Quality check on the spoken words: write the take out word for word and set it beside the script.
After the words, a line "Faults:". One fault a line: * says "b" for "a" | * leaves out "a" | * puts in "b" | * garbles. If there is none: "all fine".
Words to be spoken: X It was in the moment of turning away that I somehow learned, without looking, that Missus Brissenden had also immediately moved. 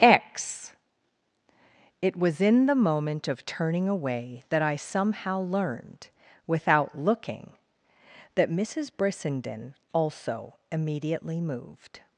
X It was in the moment of turning away that I somehow learned, without looking, that Missus Brissenden also immediately moved.
Faults:
* leaves out "had"